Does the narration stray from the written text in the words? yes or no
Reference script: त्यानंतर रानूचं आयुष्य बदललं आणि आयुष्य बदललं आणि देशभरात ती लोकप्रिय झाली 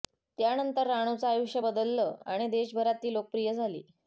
yes